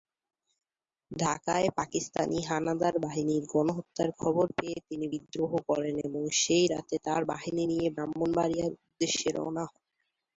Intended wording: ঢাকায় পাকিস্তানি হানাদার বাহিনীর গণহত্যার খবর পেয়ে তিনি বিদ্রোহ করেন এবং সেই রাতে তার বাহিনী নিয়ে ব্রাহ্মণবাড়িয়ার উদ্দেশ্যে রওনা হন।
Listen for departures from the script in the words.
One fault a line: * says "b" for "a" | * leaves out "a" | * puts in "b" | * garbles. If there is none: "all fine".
all fine